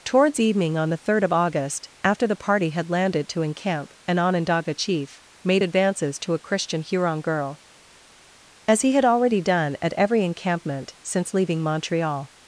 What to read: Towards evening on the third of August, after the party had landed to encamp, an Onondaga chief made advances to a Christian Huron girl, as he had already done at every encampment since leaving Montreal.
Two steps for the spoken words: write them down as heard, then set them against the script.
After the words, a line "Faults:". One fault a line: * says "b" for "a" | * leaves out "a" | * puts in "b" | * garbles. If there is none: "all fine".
Towards evening on the third of August, after the party had landed to encamp, an Onondaga chief made advances to a Christian Huron girl, as he had already done at every encampment since leaving Montreal.
Faults:
all fine